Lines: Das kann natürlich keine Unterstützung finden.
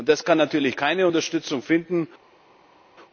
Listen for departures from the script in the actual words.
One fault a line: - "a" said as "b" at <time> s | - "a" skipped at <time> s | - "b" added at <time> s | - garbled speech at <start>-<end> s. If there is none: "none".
none